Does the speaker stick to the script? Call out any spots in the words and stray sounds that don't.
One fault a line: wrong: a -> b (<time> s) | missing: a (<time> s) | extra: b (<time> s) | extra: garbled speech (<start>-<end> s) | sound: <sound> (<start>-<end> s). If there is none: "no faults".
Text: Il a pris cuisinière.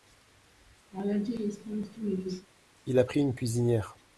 sound: laugh (0.9-2.5 s)
extra: une (3.2 s)